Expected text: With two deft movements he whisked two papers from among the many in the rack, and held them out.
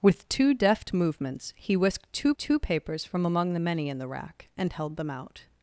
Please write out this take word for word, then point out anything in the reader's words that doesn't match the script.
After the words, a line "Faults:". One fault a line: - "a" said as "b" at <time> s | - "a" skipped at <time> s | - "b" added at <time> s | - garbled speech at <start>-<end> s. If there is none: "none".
With two deft movements he whisked two two papers from among the many in the rack, and held them out.
Faults:
- "two" added at 2.4 s